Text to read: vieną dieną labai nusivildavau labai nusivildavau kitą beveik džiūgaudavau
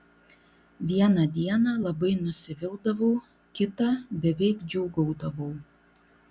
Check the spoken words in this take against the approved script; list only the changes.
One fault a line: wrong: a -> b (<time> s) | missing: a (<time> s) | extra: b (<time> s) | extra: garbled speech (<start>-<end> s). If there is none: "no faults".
missing: labai nusivildavau (3.1 s)